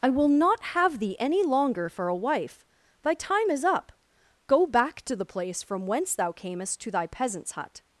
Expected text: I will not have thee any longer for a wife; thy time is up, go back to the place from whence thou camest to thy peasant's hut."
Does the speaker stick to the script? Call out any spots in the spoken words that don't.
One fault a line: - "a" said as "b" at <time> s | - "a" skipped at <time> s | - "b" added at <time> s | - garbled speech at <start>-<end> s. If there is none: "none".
none